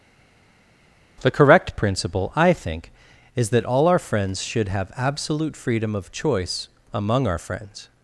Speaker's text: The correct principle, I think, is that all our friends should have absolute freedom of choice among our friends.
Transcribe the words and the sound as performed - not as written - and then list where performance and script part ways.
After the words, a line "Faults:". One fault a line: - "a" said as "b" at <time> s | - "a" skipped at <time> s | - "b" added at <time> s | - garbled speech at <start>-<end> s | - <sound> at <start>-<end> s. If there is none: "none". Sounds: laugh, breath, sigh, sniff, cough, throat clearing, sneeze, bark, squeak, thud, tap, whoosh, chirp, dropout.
The correct principle, I think, is that all our friends should have absolute freedom of choice among our friends.
Faults:
none